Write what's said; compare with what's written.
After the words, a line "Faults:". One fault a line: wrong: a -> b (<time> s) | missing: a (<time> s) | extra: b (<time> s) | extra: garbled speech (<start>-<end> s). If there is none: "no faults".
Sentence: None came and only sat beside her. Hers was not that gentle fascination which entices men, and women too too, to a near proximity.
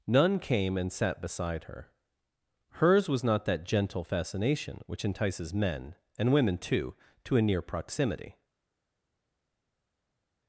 None came and sat beside her. Hers was not that gentle fascination which entices men, and women too, to a near proximity.
Faults:
missing: only (0.9 s)
missing: too (6.9 s)